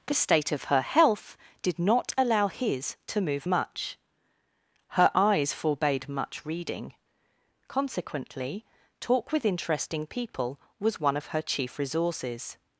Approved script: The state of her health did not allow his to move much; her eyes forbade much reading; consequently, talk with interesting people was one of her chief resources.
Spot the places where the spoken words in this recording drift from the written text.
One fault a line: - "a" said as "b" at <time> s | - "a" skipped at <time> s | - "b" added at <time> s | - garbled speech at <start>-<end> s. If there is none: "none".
none